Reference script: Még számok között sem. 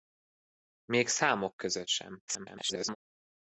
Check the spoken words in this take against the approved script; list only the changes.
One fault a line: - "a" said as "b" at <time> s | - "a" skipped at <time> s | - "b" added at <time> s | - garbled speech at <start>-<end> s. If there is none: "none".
- garbled speech at 2.3-3.0 s